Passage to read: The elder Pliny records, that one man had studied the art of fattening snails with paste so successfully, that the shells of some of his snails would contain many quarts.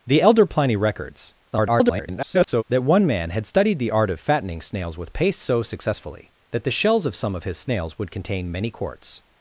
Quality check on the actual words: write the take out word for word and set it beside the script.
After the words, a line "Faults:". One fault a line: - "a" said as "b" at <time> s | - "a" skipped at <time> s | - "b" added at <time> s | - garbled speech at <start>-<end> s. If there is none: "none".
The elder Pliny records, [garbled] that one man had studied the art of fattening snails with paste so successfully, that the shells of some of his snails would contain many quarts.
Faults:
- garbled speech at 1.5-2.6 s